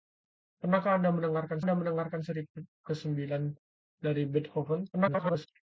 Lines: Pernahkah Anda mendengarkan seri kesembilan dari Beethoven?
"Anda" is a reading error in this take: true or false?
false